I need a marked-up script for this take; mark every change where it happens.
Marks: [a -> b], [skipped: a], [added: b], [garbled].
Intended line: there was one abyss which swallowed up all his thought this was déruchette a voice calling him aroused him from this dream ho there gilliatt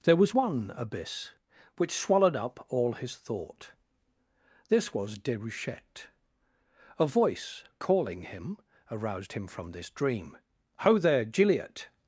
there was one abyss which swallowed up all his thought this was déruchette a voice calling him aroused him from this dream ho there gilliatt